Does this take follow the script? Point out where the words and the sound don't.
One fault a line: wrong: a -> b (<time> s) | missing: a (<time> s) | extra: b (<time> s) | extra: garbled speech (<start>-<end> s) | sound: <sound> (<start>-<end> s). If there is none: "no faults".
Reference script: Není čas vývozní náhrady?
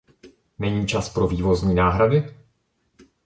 extra: pro (1.1 s)